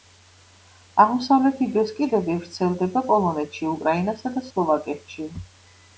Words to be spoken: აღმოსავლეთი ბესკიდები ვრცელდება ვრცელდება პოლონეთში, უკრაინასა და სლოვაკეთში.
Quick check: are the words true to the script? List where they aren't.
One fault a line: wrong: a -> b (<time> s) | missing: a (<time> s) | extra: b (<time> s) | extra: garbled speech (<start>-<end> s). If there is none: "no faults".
missing: ვრცელდება (3.0 s)